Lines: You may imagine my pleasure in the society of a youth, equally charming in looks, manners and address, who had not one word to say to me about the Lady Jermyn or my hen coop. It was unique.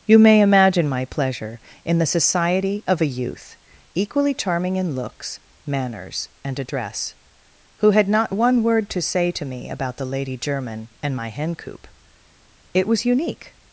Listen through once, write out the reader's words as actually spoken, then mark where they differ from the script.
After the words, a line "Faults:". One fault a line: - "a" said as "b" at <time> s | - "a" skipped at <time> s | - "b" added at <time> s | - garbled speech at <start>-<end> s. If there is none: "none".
You may imagine my pleasure in the society of a youth, equally charming in looks, manners and address, who had not one word to say to me about the Lady Jermyn and my hen coop. It was unique.
Faults:
- "or" said as "and" at 11.0 s